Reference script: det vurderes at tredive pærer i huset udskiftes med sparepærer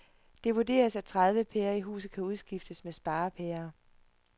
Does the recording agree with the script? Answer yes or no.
no